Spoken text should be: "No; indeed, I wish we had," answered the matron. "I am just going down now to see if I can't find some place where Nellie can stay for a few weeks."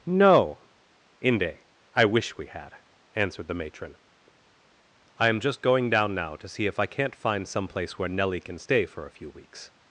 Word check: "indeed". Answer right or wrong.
wrong